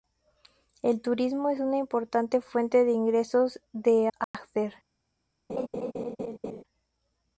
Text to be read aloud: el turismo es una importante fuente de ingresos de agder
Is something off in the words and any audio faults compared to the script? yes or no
yes